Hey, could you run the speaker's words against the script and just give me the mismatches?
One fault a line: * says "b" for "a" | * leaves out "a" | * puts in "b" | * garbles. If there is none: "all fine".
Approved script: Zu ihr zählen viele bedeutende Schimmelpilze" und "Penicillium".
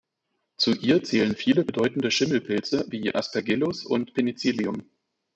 * puts in "wie Aspergillus"